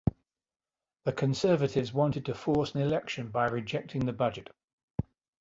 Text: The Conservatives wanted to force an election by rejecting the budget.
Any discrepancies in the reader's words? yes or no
no